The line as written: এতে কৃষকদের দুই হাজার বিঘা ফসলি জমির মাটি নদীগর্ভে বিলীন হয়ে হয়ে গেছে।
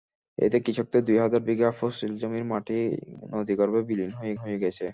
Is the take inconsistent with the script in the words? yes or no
no